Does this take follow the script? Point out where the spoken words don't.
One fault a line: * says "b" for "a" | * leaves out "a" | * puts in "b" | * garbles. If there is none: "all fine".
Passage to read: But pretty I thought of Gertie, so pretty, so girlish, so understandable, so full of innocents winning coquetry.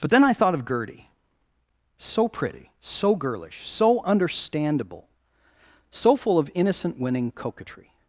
* says "then" for "pretty"
* says "innocent" for "innocents"